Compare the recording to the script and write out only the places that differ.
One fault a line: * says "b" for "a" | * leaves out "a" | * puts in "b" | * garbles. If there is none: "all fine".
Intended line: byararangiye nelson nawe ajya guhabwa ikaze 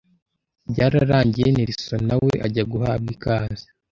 all fine